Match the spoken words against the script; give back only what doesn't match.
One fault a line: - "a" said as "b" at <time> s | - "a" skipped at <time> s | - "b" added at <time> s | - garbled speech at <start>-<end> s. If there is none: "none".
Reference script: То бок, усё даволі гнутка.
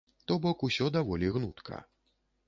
none